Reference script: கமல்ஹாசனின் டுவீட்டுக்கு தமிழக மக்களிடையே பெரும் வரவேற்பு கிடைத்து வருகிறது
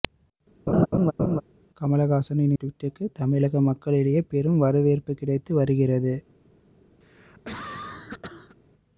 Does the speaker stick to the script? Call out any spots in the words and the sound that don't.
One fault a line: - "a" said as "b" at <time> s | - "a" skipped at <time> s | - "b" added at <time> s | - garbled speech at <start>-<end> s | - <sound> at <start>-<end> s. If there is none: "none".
- laugh at 0.7-1.4 s
- cough at 7.0-8.6 s